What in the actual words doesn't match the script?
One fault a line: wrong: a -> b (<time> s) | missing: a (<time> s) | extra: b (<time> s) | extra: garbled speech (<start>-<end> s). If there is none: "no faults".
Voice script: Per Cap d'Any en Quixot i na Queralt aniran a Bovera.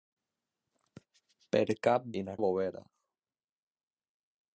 missing: d'Any en Quixot (2.1 s)
missing: Queralt aniran (2.4 s)